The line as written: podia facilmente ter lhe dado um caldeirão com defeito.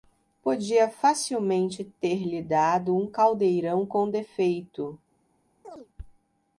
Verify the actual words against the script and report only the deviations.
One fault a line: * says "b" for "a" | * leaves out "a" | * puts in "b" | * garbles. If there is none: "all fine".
all fine